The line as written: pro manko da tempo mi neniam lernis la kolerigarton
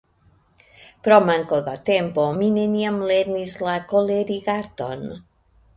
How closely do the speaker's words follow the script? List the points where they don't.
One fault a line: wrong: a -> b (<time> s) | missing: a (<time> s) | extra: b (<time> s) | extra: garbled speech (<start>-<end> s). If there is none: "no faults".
no faults